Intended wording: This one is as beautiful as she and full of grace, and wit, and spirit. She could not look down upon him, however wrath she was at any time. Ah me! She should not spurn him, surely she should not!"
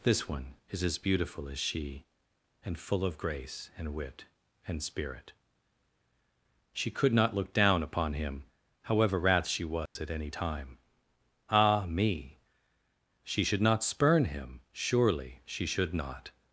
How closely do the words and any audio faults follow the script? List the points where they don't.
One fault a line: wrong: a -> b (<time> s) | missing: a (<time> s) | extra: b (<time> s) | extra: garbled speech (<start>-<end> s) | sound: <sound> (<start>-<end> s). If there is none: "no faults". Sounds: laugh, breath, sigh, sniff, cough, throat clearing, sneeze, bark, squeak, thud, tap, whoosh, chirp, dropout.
sound: dropout (9.9-10.0 s)